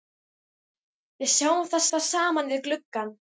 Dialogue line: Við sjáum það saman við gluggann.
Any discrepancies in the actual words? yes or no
yes